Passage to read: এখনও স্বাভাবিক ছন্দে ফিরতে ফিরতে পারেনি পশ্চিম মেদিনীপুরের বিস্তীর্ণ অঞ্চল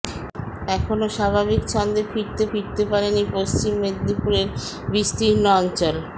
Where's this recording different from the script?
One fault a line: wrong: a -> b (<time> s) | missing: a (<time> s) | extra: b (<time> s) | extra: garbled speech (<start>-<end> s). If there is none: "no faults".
no faults